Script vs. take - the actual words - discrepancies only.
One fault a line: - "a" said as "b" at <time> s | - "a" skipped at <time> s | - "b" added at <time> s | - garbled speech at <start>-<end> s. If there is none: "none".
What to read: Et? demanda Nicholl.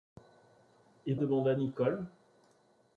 none